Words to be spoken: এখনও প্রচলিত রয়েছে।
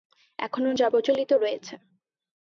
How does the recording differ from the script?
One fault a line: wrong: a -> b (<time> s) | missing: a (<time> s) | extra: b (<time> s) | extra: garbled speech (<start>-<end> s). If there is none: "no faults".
extra: যা (0.7 s)